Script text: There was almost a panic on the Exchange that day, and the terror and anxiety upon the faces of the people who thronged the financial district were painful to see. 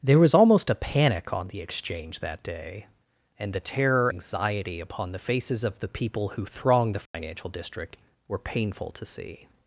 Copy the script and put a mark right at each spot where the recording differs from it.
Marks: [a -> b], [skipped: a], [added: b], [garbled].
There was almost a panic on the Exchange that day, and the terror [skipped: and] anxiety upon the faces of the people who thronged the financial district were painful to see.